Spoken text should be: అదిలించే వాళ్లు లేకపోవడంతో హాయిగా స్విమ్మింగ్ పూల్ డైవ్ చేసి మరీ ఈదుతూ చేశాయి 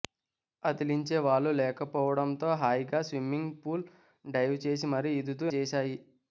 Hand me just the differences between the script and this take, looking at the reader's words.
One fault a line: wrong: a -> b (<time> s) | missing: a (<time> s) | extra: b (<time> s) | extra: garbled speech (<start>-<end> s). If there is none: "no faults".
no faults